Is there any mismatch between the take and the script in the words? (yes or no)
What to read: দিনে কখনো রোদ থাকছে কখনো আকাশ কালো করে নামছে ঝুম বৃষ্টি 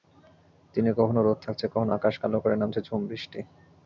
no